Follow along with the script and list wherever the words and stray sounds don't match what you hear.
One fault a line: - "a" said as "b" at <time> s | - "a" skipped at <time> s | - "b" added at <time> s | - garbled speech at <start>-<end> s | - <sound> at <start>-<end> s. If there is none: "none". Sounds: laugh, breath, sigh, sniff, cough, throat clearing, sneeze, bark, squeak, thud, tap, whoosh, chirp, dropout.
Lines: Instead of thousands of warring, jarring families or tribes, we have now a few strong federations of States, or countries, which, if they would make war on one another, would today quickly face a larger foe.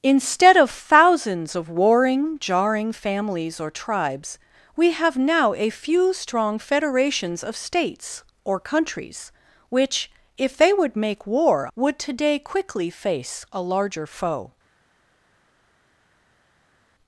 - "on one another" skipped at 11.7 s